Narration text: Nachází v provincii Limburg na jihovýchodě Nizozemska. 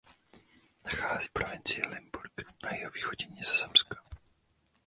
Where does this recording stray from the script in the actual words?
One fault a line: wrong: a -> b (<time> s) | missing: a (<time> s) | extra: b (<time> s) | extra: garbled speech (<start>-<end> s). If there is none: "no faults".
no faults